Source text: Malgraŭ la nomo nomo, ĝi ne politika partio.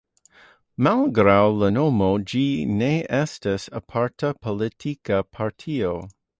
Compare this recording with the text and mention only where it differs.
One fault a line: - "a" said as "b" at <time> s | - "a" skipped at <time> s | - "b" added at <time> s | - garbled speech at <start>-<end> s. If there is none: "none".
- "nomo" skipped at 2.1 s
- "estas aparta" added at 3.2 s